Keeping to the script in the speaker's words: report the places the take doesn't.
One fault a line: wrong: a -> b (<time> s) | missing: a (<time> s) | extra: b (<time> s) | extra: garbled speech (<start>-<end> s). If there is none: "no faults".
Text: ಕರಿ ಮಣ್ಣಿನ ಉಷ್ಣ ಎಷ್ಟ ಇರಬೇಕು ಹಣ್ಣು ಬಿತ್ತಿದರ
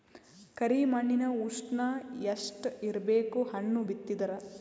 no faults